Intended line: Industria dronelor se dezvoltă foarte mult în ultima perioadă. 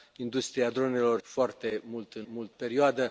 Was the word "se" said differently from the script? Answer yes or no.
yes